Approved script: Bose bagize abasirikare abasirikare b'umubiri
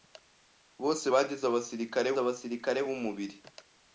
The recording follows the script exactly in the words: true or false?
true